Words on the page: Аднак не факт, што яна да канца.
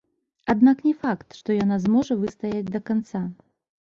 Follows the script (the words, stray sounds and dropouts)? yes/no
no